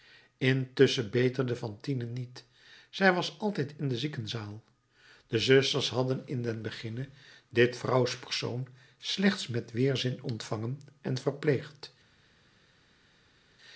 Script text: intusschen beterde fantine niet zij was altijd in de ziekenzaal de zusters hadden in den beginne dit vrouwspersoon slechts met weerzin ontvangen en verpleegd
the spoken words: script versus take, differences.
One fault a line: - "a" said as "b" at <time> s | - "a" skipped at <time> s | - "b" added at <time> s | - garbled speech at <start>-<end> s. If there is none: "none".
none